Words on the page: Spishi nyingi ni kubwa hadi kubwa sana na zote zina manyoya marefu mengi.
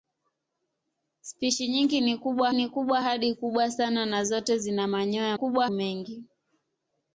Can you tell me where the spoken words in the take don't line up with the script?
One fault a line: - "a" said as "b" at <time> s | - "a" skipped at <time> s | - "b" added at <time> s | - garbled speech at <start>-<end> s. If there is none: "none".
- "ni kubwa" added at 2.5 s
- "marefu" said as "kubwa" at 5.3 s